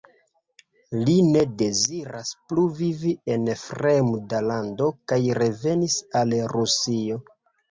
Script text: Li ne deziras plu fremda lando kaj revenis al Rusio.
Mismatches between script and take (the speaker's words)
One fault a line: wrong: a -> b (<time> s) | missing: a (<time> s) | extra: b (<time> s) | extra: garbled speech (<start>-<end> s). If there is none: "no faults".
extra: vivi en (2.8 s)